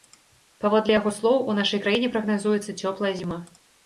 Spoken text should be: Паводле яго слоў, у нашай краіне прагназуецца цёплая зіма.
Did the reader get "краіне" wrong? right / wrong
right